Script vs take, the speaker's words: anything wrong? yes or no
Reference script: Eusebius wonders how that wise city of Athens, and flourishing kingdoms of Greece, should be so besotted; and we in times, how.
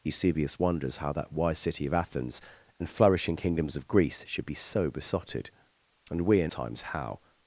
no